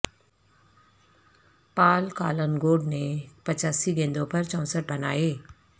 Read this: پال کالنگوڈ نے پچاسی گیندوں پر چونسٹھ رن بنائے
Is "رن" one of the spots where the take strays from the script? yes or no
yes